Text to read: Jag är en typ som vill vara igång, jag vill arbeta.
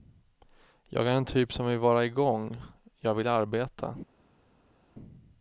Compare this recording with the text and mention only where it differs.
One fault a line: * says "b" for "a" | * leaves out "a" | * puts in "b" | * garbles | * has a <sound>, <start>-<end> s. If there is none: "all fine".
all fine